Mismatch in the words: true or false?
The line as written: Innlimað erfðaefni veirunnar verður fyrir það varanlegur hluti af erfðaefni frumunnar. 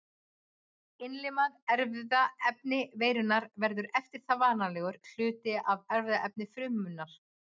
true